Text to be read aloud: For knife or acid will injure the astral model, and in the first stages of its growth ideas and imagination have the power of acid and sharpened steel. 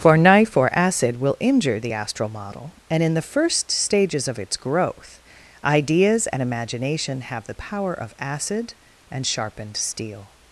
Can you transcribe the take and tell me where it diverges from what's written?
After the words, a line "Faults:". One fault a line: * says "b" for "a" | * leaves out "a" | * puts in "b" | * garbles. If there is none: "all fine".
For knife or acid will injure the astral model, and in the first stages of its growth ideas and imagination have the power of acid and sharpened steel.
Faults:
all fine